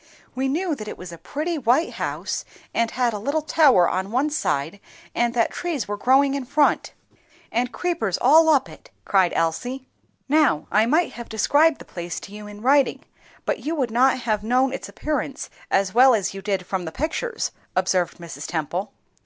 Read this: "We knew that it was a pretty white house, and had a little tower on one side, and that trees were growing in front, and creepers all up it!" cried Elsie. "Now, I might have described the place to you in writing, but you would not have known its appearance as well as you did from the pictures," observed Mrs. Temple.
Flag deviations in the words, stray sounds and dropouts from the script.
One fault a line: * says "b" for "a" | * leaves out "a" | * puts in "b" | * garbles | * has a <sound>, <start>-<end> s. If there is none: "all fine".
all fine